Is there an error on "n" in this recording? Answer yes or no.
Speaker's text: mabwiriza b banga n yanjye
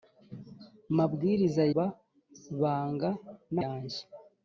no